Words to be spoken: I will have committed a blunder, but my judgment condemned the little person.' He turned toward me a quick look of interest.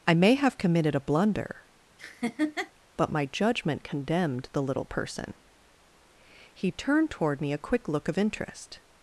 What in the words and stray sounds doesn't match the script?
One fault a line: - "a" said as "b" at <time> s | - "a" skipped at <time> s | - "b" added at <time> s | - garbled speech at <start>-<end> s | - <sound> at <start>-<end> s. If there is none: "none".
- "will" said as "may" at 0.1 s
- laugh at 2.0-2.7 s